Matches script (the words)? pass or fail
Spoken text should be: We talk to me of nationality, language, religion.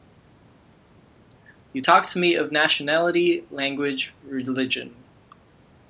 fail